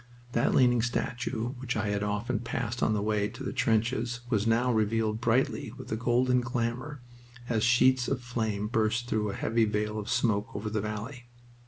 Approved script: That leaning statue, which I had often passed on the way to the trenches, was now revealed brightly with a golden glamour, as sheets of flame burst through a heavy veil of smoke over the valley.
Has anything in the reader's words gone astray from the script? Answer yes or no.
no